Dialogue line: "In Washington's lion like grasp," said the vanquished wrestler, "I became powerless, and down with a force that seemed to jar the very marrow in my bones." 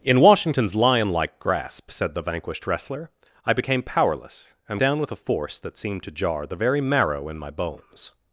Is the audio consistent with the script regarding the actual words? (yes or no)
yes